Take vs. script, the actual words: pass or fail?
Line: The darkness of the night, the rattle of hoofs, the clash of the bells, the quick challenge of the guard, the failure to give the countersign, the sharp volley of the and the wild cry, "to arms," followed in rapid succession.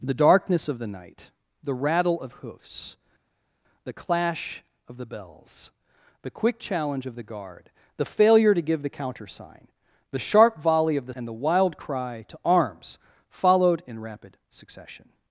pass